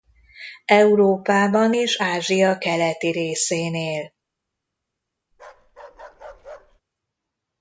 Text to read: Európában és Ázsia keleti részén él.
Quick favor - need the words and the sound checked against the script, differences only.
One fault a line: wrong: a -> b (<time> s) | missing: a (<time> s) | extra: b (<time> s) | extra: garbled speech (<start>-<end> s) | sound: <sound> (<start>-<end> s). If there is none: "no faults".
sound: bark (5.3-6.8 s)